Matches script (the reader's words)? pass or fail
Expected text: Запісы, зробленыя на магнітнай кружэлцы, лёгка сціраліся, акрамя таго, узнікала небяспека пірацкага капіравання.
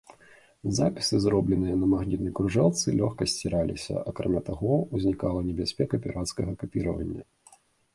pass